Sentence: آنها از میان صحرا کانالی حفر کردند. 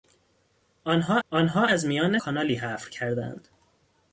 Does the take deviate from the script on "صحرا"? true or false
true